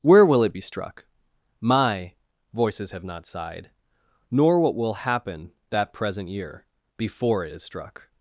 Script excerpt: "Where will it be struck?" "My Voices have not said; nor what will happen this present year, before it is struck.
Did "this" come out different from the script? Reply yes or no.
yes